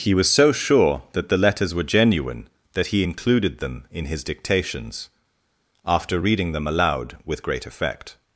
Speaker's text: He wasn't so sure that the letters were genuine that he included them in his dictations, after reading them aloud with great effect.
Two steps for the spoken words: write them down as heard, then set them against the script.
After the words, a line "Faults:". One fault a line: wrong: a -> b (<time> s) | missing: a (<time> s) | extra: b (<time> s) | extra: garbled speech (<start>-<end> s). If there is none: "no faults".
He was so sure that the letters were genuine that he included them in his dictations, after reading them aloud with great effect.
Faults:
wrong: wasn't -> was (0.1 s)